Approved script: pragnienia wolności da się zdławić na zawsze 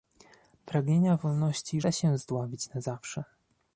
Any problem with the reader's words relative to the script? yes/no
no